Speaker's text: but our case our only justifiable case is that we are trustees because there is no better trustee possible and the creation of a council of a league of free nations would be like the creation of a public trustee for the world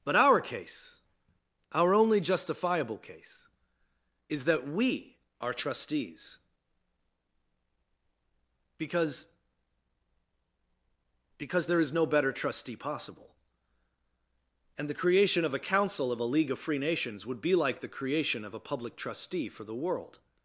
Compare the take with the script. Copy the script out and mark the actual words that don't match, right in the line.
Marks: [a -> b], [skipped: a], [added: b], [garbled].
but our case our only justifiable case is that we are trustees because [added: because] there is no better trustee possible and the creation of a council of a league of free nations would be like the creation of a public trustee for the world